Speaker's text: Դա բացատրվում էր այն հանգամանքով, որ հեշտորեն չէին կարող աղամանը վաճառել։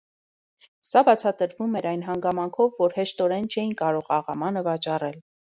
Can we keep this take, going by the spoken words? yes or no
no